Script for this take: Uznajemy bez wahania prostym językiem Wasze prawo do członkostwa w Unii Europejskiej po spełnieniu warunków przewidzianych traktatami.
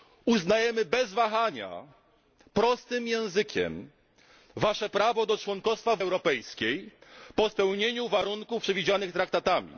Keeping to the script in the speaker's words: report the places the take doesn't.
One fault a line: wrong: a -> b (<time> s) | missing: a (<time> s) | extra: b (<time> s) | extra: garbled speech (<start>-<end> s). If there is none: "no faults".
missing: Unii (6.0 s)